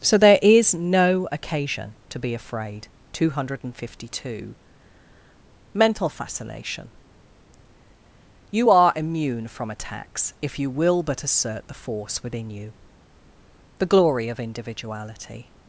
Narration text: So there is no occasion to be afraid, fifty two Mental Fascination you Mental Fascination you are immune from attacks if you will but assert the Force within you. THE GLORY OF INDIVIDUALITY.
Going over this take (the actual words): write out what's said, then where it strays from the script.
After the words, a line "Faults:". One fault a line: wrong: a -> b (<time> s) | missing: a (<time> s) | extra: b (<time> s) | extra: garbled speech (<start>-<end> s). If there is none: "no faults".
So there is no occasion to be afraid, two hundred fifty two Mental Fascination you are immune from attacks if you will but assert the Force within you. THE GLORY OF INDIVIDUALITY.
Faults:
missing: fifty (2.9 s)
wrong: Mental Fascination you -> hundred fifty two (3.3 s)